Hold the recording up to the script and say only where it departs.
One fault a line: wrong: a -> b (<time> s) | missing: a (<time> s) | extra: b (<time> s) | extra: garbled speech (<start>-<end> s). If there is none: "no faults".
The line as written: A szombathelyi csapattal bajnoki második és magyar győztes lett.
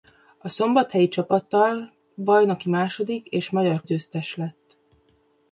no faults